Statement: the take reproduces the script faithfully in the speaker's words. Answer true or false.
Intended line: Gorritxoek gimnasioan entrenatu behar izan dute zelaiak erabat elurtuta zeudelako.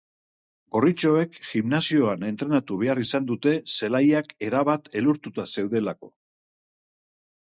true